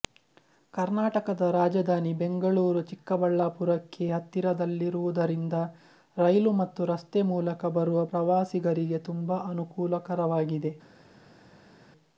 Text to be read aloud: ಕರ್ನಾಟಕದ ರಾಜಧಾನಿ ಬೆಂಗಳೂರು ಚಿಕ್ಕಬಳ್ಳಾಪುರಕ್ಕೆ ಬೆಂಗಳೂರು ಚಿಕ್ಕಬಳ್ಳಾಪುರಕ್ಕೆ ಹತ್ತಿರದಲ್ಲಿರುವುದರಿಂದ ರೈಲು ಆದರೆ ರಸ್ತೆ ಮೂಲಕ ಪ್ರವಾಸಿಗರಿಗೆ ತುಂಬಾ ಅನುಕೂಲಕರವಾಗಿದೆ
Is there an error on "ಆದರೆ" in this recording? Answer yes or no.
yes